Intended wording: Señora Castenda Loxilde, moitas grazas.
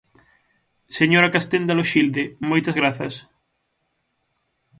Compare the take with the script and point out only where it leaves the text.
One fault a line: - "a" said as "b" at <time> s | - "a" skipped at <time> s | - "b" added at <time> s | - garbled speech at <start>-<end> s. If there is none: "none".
none